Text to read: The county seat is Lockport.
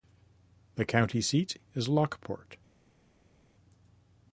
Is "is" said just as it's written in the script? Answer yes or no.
yes